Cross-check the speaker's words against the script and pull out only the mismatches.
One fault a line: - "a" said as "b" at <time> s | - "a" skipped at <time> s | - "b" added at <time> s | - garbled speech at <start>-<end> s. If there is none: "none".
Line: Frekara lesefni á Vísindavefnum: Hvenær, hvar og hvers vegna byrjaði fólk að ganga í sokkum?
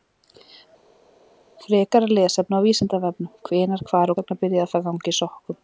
- "og hvers" skipped at 4.1 s
- "fólk" skipped at 4.7 s